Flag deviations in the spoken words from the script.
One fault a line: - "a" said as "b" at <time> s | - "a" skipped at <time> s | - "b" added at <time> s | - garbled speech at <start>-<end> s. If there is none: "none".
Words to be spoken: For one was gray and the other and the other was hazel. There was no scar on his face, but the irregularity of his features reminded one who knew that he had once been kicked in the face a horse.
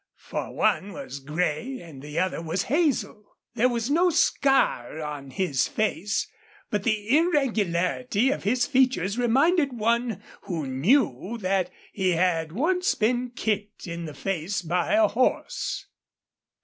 - "and the other" skipped at 2.4 s
- "by" added at 14.6 s